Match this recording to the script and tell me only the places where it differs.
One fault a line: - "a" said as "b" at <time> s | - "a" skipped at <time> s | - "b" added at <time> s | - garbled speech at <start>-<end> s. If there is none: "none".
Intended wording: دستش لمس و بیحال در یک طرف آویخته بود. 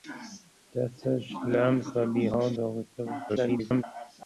- "در یک طرف" skipped at 2.5 s
- garbled speech at 3.3-3.8 s